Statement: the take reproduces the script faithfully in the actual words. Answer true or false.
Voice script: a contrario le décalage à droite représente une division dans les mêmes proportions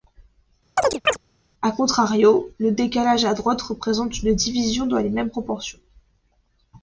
true